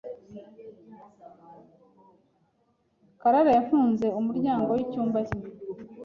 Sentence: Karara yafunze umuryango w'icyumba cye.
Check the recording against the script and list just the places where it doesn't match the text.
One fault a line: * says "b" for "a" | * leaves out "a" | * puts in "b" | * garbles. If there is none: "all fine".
all fine